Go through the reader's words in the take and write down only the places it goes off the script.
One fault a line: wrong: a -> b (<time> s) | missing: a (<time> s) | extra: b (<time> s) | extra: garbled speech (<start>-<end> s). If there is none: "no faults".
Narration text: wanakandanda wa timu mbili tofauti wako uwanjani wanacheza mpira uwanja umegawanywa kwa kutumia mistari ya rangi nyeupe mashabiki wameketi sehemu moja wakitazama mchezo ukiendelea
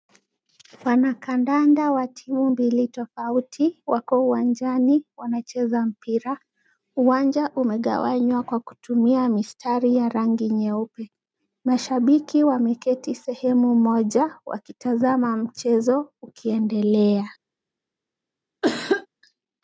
no faults